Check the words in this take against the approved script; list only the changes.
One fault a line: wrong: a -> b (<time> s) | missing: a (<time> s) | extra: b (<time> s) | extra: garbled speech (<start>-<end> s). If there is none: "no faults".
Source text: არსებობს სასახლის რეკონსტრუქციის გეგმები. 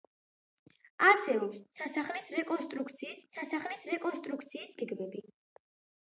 extra: სასახლის რეკონსტრუქციის (3.3 s)